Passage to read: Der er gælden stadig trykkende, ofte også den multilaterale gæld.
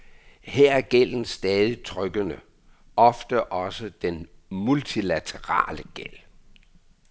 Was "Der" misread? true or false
true